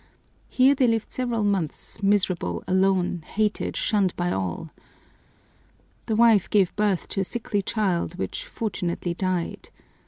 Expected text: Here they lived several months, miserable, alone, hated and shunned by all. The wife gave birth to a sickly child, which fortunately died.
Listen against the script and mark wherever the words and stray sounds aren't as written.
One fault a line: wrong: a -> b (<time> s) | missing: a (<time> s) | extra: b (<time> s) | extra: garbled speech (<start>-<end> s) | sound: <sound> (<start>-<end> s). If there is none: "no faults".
missing: and (3.8 s)